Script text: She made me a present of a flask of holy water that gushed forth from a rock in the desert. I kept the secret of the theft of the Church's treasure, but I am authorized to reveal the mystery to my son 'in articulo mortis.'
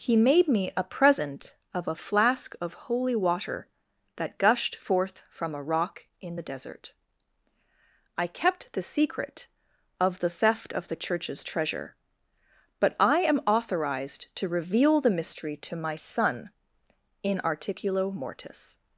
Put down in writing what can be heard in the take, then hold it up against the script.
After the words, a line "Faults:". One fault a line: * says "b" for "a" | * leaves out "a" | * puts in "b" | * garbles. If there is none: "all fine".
He made me a present of a flask of holy water that gushed forth from a rock in the desert. I kept the secret of the theft of the Church's treasure, but I am authorized to reveal the mystery to my son 'in articulo mortis.'
Faults:
* says "He" for "She"